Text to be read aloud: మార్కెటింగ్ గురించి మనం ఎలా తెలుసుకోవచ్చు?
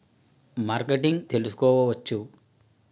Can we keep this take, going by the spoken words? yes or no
no